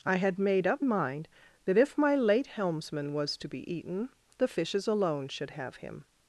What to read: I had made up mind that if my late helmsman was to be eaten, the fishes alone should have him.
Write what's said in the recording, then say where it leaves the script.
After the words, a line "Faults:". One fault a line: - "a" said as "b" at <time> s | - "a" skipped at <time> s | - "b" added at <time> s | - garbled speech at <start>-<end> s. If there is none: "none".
I had made up mind that if my late helmsman was to be eaten, the fishes alone should have him.
Faults:
none